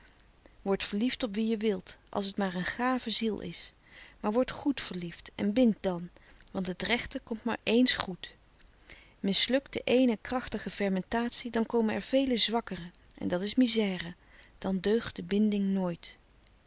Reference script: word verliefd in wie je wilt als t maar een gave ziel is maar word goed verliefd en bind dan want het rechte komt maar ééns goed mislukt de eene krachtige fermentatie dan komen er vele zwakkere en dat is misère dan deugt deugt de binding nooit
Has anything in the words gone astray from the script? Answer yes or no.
yes